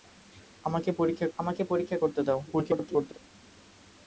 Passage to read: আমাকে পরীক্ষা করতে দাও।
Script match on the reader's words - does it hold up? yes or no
no